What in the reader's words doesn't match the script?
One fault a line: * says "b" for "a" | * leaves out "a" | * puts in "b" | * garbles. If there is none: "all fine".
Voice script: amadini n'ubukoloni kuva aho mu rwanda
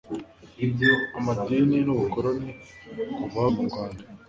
all fine